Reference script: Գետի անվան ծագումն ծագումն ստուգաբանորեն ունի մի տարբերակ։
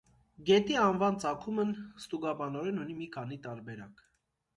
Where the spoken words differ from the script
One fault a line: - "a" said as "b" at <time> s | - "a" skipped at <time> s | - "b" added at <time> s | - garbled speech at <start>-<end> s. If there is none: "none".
- "ծագումն" skipped at 1.7 s
- "քանի" added at 3.1 s